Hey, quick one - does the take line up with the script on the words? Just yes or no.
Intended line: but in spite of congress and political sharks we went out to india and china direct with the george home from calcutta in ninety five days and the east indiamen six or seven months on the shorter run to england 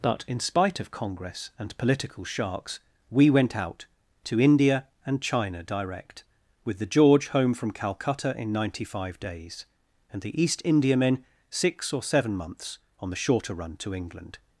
yes